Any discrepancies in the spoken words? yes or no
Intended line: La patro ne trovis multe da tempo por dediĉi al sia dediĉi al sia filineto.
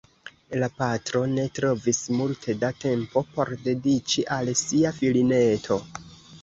yes